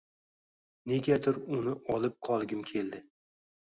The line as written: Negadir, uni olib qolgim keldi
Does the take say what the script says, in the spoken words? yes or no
yes